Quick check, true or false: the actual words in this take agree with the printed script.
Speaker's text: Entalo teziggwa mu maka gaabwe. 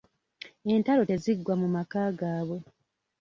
true